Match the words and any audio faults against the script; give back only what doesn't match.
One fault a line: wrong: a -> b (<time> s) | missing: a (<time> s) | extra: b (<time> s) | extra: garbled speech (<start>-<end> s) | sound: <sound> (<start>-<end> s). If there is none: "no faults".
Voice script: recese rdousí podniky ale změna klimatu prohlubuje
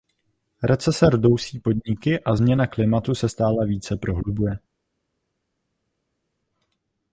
wrong: ale -> a (2.2 s)
extra: se stále více (3.1 s)